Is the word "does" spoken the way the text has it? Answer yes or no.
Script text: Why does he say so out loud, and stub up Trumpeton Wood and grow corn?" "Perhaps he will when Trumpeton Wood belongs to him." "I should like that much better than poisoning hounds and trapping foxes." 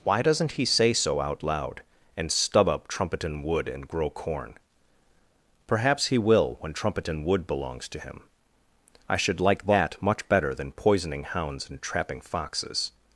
no